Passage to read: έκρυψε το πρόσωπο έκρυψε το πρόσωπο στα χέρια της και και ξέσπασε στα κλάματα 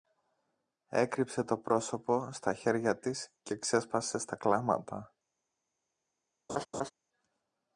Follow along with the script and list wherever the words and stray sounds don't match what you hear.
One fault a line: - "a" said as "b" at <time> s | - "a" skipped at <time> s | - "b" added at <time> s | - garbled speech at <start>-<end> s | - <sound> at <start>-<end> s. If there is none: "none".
- "έκρυψε το πρόσωπο" skipped at 2.3 s
- "και" skipped at 3.5 s
- laugh at 6.5-6.9 s